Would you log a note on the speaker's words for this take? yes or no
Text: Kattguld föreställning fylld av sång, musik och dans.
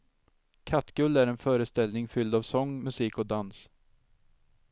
yes